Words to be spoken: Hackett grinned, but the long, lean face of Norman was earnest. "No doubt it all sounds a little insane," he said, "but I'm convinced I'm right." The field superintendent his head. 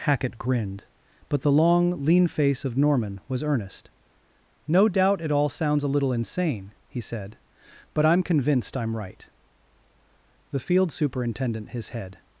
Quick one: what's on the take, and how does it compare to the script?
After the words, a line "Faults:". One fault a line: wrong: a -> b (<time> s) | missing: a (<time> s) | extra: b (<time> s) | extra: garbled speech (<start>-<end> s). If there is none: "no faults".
Hackett grinned, but the long, lean face of Norman was earnest. "No doubt it all sounds a little insane," he said, "but I'm convinced I'm right." The field superintendent his head.
Faults:
no faults